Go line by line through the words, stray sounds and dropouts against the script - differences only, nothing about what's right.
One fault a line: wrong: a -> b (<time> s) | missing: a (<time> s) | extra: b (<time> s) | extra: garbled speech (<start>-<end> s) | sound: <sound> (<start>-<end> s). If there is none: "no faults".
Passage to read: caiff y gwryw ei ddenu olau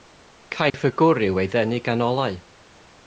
sound: dropout (0.7-0.7 s)
extra: gan (1.9 s)